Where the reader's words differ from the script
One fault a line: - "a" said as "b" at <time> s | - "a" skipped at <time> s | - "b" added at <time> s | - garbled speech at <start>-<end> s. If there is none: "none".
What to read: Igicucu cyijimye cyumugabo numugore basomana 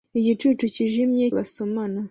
- "cyumugabo numugore" skipped at 1.2 s